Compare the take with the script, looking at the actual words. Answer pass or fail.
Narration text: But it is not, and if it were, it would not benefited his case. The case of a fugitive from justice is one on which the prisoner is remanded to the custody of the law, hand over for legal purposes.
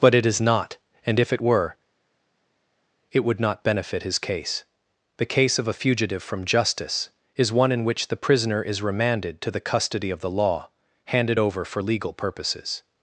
fail